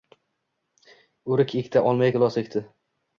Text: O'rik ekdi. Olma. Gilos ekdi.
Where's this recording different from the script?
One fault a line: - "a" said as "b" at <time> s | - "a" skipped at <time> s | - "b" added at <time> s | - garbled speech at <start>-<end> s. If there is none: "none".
none